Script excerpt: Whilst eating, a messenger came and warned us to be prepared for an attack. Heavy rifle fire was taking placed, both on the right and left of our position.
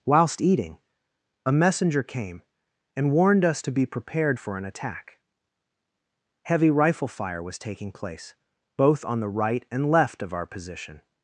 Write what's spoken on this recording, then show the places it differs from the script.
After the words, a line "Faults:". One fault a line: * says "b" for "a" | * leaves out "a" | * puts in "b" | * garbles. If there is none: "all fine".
Whilst eating, a messenger came and warned us to be prepared for an attack. Heavy rifle fire was taking place, both on the right and left of our position.
Faults:
* says "place" for "placed"